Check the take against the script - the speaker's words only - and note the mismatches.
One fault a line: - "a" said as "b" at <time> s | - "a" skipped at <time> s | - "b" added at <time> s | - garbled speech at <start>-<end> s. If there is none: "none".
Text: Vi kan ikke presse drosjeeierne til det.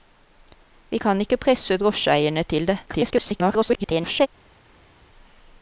- garbled speech at 2.9-4.3 s